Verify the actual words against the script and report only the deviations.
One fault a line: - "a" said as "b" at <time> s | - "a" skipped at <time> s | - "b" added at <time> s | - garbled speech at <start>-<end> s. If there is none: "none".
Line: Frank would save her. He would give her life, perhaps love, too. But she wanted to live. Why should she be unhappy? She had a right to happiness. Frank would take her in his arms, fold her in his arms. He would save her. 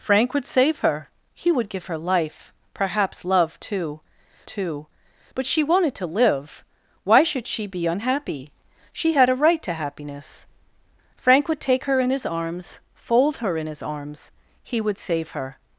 - "too" added at 4.4 s